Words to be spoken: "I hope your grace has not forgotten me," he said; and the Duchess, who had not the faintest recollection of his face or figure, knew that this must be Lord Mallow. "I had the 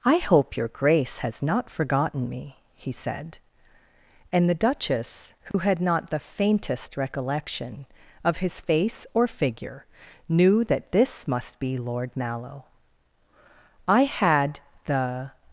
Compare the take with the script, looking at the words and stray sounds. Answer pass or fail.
fail